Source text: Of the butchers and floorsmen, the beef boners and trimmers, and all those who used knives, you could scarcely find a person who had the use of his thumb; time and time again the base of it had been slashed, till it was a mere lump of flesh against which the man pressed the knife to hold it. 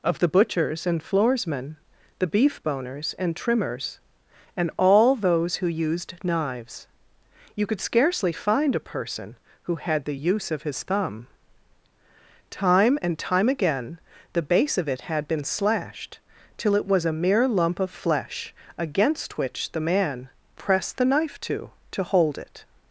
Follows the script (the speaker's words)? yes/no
no